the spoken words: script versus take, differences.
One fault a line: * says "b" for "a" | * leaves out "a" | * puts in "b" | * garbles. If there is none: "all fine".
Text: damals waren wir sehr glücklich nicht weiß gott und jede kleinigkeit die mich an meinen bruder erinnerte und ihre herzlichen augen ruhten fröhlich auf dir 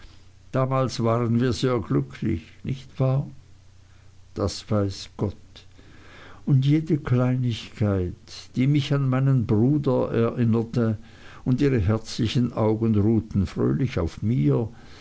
* puts in "wahr das"
* says "mir" for "dir"